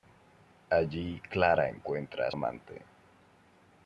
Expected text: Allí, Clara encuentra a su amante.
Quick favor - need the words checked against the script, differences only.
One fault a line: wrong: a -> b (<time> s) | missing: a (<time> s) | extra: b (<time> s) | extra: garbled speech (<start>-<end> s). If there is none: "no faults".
missing: su (2.3 s)